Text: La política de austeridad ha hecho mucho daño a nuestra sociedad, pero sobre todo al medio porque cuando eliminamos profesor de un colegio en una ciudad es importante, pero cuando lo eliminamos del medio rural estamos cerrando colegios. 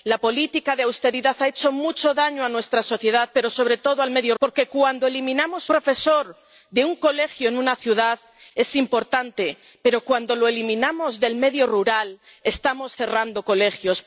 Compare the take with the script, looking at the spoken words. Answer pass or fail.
pass